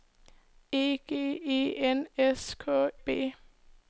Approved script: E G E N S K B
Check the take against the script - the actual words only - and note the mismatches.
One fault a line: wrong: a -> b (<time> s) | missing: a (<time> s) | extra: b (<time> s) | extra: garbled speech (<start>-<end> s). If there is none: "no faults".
no faults